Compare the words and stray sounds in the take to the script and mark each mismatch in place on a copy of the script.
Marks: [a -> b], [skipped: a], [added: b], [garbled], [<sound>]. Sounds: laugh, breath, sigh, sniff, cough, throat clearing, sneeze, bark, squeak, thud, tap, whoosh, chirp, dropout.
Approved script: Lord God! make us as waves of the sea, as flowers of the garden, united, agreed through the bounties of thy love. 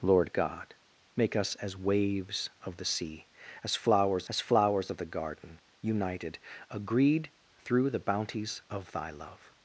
Lord God! make us as waves of the sea, as flowers [added: as flowers] of the garden, united, agreed through the bounties of thy love.